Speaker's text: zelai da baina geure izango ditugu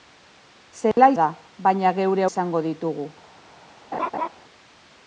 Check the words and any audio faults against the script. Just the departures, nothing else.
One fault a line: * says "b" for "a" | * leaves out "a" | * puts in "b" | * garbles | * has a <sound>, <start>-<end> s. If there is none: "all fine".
* has a dropout, 0.9-1.0 s
* has a laugh, 3.9-4.3 s